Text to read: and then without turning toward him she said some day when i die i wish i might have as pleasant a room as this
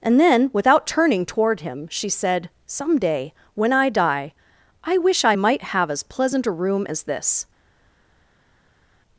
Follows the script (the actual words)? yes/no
yes